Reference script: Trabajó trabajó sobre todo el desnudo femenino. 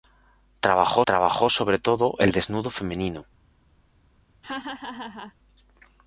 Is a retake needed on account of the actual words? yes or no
no